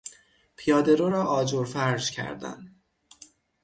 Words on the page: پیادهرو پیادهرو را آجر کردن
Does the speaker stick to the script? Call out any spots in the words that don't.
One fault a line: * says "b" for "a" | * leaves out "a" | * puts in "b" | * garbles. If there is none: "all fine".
* leaves out "پیادهرو"
* puts in "فرش"